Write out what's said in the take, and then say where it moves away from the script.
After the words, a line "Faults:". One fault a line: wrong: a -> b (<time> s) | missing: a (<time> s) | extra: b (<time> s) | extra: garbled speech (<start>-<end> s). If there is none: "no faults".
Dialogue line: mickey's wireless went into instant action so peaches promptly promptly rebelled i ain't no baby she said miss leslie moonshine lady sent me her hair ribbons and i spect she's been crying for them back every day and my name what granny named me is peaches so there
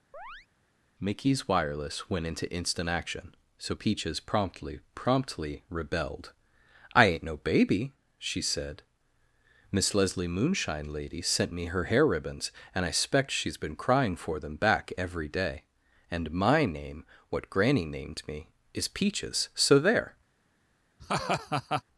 mickey's wireless went into instant action so peaches promptly promptly rebelled i ain't no baby she said miss leslie moonshine lady sent me her hair ribbons and i spect she's been crying for them back every day and my name what granny named me is peaches so there
Faults:
no faults